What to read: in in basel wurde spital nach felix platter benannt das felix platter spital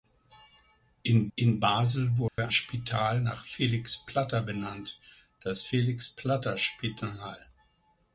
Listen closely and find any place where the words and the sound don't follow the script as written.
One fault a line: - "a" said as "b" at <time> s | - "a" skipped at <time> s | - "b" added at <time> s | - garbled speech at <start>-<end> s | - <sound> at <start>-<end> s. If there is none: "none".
- dropout at 2.3-2.4 s